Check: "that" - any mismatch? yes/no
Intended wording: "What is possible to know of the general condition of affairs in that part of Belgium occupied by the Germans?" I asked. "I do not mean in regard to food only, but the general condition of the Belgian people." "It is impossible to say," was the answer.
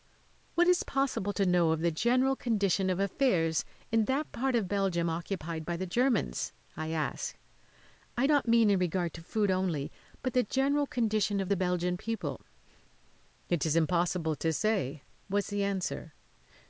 no